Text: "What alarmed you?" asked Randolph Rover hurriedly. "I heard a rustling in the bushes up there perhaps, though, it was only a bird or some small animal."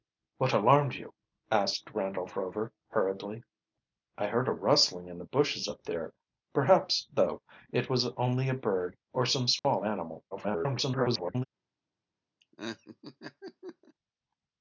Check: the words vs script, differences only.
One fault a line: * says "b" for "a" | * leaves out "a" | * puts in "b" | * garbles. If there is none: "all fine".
* garbles